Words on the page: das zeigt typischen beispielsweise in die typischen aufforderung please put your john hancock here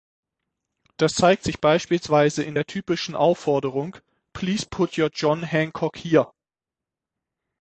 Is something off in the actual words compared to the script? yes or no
yes